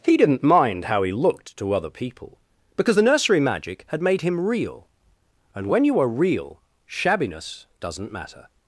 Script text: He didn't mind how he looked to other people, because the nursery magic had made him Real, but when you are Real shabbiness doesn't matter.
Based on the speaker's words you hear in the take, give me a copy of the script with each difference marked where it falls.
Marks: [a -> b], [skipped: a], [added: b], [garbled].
He didn't mind how he looked to other people, because the nursery magic had made him Real, [but -> and] when you are Real shabbiness doesn't matter.